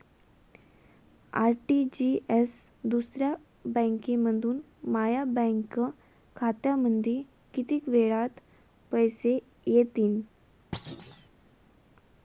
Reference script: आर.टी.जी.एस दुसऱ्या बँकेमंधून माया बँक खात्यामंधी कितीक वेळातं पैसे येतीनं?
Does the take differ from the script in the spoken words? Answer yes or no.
no